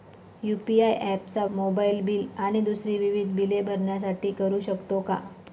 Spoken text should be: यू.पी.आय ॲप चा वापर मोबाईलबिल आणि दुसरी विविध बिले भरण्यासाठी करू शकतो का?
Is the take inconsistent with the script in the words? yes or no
yes